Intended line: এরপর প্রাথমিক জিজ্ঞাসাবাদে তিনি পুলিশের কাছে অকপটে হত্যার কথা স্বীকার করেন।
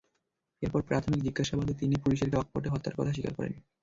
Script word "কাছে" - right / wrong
wrong